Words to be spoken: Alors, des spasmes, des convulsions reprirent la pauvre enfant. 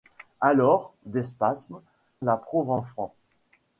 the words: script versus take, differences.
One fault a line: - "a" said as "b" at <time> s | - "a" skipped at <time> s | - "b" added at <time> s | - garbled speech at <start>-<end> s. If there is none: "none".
- "des convulsions reprirent" skipped at 1.8 s